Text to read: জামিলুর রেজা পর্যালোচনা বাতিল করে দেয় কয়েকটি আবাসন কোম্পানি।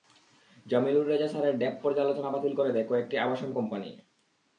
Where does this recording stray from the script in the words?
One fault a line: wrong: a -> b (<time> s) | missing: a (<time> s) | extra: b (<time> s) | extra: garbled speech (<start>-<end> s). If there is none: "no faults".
extra: স্যারের ড্যাপ (1.3 s)